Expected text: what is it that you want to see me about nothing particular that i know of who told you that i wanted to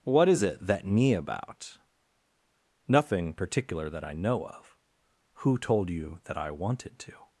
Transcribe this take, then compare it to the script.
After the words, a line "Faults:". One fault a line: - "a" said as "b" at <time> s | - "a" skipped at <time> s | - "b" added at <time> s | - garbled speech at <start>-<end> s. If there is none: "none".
what is it that me about nothing particular that i know of who told you that i wanted to
Faults:
- "you want to see" skipped at 0.8 s